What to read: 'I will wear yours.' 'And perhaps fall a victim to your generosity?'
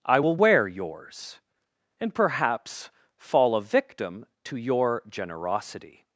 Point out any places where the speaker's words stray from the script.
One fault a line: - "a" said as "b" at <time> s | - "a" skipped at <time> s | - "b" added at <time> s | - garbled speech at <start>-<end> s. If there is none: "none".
none